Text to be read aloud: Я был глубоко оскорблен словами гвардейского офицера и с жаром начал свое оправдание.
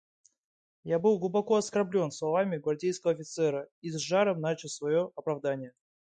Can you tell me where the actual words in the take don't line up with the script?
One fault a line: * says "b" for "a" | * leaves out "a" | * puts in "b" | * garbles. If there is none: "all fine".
all fine